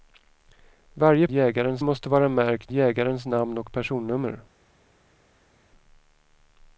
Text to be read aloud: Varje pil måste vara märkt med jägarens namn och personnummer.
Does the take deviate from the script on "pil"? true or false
true